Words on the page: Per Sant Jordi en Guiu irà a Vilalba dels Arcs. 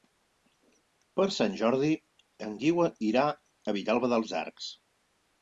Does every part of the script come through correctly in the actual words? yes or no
yes